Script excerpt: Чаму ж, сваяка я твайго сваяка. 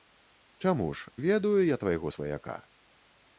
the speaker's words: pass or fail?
fail